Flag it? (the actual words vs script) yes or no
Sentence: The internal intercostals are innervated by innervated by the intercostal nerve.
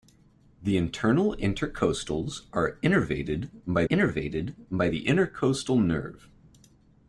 no